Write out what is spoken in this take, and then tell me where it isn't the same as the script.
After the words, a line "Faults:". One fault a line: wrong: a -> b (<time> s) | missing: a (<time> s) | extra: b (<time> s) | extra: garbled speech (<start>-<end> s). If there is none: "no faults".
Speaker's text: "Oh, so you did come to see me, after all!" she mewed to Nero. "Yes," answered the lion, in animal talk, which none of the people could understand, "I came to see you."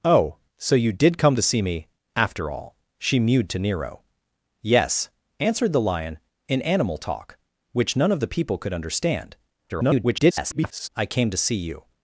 "Oh, so you did come to see me, after all!" she mewed to Nero. "Yes," answered the lion, in animal talk, which none of the people could understand, [garbled] "I came to see you."
Faults:
extra: garbled speech (9.7-10.9 s)